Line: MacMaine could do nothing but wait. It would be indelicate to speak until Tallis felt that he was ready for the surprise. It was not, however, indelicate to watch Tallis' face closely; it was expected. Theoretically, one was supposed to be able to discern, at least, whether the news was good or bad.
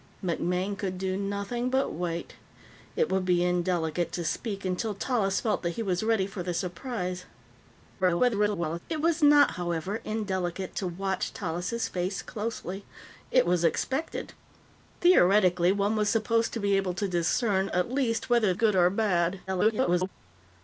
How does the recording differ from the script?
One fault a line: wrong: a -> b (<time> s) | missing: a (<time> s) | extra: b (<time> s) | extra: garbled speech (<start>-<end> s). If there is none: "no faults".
extra: garbled speech (8.0-8.8 s)
missing: the news was (18.5 s)
extra: garbled speech (19.5-20.1 s)